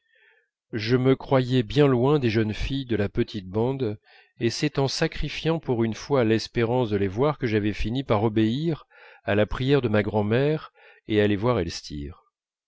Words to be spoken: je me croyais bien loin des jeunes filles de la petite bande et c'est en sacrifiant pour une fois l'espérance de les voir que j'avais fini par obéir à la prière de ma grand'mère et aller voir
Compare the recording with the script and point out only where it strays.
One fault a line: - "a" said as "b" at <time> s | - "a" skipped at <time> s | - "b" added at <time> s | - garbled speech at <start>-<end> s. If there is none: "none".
none